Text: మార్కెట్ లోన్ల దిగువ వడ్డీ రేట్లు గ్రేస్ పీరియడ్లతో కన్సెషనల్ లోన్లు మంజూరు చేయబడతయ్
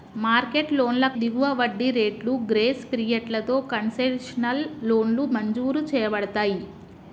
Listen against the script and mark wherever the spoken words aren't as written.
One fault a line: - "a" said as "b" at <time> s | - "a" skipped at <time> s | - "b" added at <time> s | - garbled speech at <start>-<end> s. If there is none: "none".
none